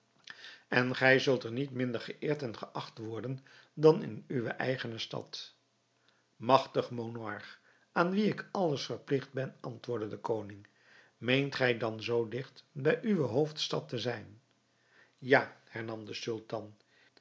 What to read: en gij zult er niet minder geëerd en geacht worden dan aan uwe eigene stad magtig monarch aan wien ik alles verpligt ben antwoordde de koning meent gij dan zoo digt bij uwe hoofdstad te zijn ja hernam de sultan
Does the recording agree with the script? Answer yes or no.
no